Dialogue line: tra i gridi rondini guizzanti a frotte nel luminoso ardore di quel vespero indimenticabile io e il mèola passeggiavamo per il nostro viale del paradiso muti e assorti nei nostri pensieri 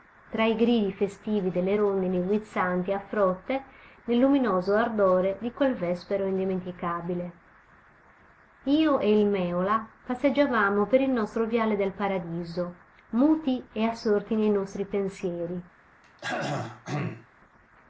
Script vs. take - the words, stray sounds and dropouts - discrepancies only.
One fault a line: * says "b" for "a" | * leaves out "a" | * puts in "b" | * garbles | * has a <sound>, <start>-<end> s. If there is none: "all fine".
* puts in "festivi delle"
* has a throat clearing, 16.0-17.3 s